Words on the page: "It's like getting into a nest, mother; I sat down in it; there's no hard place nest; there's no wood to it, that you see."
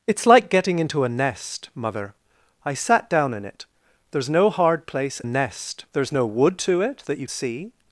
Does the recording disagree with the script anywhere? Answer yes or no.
no